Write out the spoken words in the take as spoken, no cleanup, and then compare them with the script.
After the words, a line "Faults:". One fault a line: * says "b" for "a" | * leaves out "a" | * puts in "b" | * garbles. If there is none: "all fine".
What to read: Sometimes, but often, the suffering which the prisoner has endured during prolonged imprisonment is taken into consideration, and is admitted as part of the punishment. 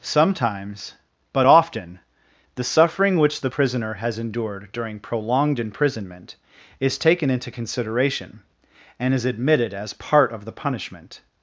Sometimes, but often, the suffering which the prisoner has endured during prolonged imprisonment is taken into consideration, and is admitted as part of the punishment.
Faults:
all fine